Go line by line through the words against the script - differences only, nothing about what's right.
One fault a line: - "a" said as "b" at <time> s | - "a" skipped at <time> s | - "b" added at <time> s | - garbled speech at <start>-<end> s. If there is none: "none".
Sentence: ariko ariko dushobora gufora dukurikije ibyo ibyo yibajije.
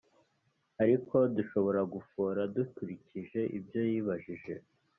- "ariko" skipped at 1.1 s
- "ibyo" skipped at 3.8 s